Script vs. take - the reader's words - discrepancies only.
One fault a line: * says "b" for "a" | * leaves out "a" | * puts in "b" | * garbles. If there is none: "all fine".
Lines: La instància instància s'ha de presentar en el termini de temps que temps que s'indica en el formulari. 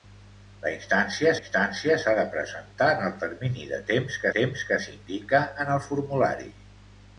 all fine